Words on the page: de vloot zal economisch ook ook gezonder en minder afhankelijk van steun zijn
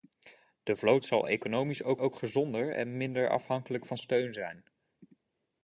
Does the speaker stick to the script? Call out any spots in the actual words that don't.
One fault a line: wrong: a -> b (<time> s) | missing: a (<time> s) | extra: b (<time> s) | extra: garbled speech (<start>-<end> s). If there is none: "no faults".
no faults